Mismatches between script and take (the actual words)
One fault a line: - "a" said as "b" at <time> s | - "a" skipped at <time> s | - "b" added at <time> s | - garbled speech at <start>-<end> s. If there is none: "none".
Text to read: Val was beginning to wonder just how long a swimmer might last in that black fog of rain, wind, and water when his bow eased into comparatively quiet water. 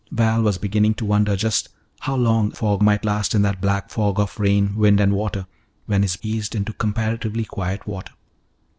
- "swimmer" said as "fog" at 2.6 s
- "bow" skipped at 6.2 s